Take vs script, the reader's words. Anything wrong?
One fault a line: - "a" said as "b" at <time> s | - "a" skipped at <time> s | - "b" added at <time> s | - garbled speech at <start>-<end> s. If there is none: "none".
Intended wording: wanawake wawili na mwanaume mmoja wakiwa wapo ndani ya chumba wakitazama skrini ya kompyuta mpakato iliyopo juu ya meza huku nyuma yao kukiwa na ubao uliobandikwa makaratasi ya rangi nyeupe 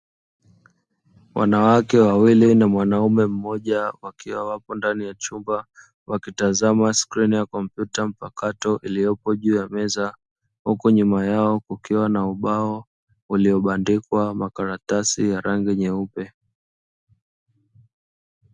none